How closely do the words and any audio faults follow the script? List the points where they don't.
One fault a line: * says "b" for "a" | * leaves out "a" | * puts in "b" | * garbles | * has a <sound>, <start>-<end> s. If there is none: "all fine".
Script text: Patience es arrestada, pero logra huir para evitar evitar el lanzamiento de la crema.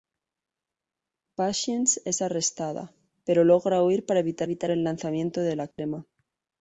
* has a dropout, 5.7-5.8 s